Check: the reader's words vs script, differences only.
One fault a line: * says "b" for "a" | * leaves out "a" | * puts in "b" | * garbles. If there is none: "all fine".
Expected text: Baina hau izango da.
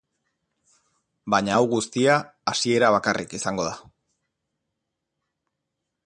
* puts in "guztia hasiera bakarrik"